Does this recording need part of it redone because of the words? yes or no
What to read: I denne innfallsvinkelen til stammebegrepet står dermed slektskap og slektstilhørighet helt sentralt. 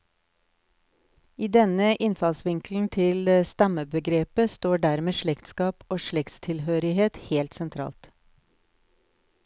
no